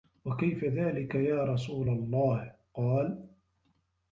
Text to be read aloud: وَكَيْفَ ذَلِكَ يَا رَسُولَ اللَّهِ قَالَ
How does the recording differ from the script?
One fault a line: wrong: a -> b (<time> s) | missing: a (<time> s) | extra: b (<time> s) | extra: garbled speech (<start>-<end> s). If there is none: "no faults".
no faults